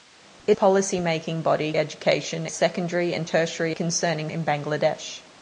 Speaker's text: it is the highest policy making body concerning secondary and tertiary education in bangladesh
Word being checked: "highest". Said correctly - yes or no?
no